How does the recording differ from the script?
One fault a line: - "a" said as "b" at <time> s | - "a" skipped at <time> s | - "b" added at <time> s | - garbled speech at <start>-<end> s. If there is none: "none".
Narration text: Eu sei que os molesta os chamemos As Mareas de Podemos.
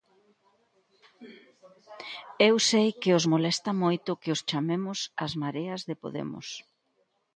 - "moito que" added at 3.8 s